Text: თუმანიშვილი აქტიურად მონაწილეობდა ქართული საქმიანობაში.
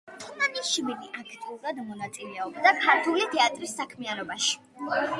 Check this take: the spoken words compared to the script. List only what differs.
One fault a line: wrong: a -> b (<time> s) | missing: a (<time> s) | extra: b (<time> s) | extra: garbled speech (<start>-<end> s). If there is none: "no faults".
extra: თეატრის (3.3 s)